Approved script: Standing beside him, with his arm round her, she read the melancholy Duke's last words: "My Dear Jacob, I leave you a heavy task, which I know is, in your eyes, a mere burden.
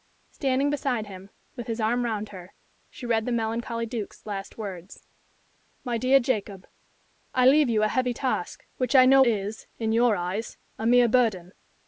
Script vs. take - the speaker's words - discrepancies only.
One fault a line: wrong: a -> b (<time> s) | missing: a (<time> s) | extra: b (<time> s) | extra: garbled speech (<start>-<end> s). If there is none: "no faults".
no faults